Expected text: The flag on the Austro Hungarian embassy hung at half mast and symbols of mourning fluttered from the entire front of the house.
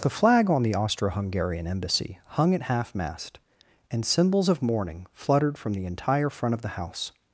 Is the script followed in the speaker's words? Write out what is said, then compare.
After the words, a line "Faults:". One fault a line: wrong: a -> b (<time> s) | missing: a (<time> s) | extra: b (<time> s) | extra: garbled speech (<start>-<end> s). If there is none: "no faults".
The flag on the Austro Hungarian embassy hung at half mast and symbols of mourning fluttered from the entire front of the house.
Faults:
no faults